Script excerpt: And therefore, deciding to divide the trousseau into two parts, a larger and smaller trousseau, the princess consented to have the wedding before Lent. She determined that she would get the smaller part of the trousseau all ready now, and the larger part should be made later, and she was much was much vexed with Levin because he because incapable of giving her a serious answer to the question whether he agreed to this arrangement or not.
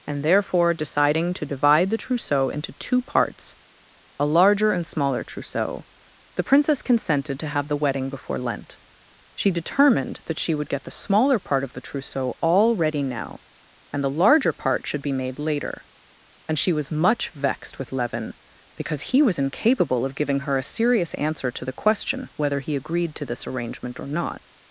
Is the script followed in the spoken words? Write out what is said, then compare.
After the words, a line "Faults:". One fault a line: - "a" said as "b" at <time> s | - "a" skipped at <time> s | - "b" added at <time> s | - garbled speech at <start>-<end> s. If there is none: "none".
And therefore, deciding to divide the trousseau into two parts, a larger and smaller trousseau, the princess consented to have the wedding before Lent. She determined that she would get the smaller part of the trousseau all ready now, and the larger part should be made later, and she was much vexed with Levin because he was incapable of giving her a serious answer to the question whether he agreed to this arrangement or not.
Faults:
- "was much" skipped at 17.3 s
- "because" said as "was" at 19.2 s